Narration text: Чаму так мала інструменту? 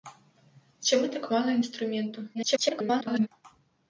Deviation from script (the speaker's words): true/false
true